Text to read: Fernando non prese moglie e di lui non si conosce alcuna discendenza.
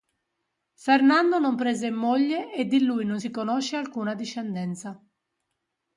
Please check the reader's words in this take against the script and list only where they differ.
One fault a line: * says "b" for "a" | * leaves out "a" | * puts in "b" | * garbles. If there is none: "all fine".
all fine